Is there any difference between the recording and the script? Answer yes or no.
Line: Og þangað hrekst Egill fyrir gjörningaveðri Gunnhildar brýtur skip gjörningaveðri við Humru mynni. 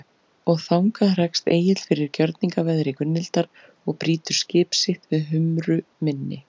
yes